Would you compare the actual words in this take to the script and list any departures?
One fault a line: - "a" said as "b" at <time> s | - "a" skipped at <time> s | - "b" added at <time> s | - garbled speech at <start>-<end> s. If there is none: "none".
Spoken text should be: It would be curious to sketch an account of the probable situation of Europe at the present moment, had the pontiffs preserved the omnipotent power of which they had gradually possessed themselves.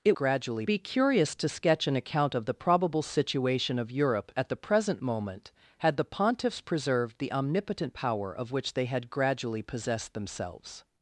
- "would" said as "gradually" at 0.1 s